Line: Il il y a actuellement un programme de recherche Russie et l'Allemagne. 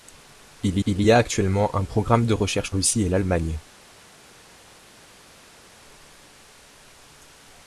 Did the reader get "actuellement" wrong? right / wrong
right